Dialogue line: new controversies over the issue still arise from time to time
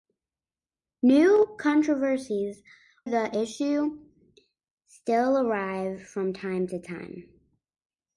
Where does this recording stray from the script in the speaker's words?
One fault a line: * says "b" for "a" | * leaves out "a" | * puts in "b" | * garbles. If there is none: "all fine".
* leaves out "over"